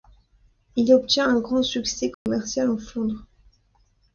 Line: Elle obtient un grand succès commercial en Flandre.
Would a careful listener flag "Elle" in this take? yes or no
yes